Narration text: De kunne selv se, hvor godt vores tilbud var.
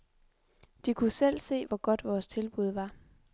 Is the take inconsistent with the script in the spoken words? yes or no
no